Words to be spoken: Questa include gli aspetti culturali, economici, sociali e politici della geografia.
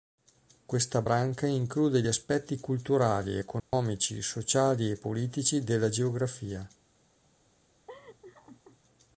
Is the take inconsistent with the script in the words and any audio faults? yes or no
yes